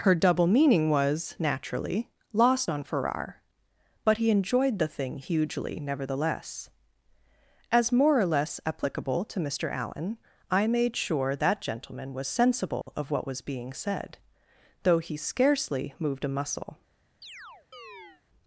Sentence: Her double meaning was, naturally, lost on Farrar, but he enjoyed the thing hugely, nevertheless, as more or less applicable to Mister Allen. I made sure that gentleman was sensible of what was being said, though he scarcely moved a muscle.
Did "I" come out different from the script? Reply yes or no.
no